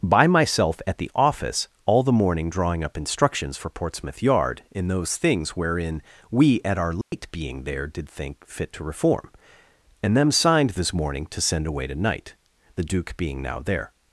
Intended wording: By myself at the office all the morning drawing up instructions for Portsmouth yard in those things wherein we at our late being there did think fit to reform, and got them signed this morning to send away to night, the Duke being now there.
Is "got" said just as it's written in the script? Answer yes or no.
no